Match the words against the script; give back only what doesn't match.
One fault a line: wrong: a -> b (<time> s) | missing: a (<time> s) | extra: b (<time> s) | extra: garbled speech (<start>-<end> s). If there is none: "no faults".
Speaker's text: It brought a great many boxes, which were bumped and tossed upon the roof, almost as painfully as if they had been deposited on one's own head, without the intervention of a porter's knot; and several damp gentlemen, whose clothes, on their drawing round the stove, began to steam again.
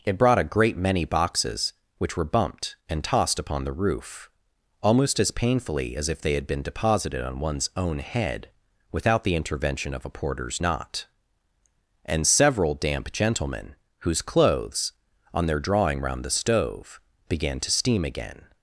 no faults